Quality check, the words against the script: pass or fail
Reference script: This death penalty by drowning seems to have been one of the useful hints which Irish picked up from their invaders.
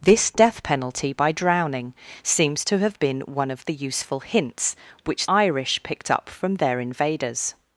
pass